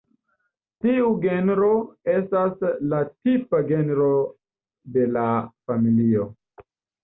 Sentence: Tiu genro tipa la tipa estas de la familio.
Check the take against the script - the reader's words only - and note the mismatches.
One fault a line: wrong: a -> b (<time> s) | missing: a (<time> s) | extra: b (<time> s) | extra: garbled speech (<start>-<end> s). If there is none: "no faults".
wrong: tipa -> estas (2.1 s)
wrong: estas -> genro (3.7 s)